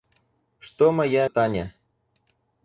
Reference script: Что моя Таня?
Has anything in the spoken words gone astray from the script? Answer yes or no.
no